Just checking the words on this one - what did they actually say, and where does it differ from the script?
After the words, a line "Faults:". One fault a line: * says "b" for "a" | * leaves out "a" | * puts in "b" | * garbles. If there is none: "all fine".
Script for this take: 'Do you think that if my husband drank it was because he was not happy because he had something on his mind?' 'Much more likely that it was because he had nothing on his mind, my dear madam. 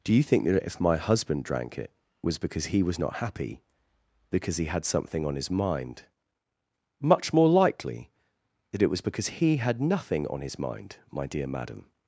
'Do you think that if my husband drank it was because he was not happy because he had something on his mind?' 'Much more likely that it was because he had nothing on his mind, my dear madam.
Faults:
all fine